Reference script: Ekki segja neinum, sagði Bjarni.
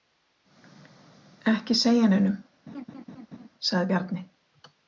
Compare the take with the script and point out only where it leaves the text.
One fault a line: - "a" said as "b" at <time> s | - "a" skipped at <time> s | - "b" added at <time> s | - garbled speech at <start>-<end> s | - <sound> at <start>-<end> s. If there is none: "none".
- laugh at 2.7-3.5 s